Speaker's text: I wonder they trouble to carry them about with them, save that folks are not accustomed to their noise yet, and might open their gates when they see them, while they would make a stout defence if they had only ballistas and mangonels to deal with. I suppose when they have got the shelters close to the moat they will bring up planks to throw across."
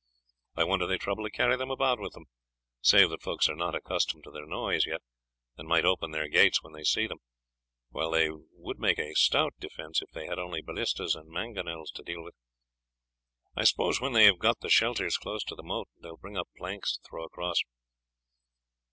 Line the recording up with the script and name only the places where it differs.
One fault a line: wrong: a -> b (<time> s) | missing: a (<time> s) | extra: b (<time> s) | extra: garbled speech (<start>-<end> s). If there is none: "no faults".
no faults